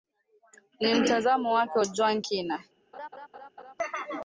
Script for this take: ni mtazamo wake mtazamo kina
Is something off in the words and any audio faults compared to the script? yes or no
yes